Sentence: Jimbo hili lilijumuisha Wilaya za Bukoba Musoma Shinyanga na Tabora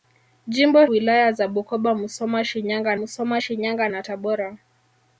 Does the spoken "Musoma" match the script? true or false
true